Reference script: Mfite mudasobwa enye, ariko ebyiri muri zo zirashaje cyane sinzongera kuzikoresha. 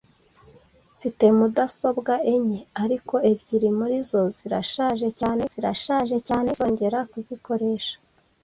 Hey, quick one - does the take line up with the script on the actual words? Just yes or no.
no